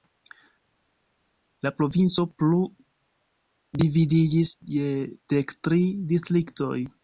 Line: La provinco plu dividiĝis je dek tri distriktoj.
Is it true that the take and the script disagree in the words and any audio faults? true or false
false